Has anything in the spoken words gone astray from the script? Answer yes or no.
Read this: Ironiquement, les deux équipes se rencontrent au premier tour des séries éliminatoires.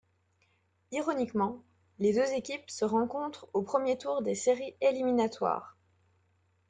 no